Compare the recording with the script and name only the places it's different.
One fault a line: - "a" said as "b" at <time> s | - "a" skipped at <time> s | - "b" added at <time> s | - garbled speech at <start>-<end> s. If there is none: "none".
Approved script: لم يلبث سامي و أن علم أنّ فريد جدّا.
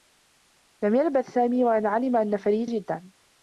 none